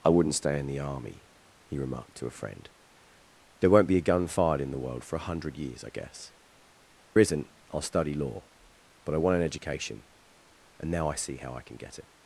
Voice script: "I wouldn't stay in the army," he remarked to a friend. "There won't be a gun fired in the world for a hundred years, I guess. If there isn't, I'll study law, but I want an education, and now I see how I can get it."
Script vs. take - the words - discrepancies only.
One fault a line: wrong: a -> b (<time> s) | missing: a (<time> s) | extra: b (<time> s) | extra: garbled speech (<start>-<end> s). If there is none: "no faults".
missing: If there (6.3 s)